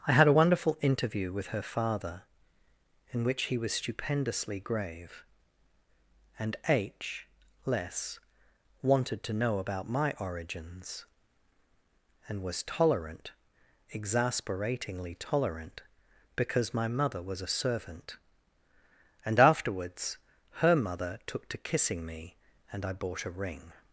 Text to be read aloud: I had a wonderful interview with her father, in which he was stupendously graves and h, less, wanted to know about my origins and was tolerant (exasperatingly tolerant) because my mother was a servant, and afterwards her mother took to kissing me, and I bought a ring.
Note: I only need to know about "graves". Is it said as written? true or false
false